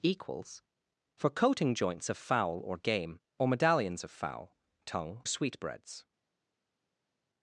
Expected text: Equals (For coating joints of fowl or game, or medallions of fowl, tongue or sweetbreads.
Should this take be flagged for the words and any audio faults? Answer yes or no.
yes